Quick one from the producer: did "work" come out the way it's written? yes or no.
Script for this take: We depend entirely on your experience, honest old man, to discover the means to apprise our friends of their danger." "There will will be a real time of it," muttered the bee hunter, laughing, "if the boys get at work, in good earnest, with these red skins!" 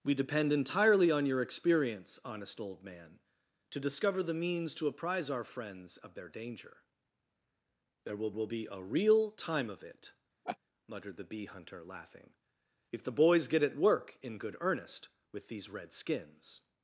yes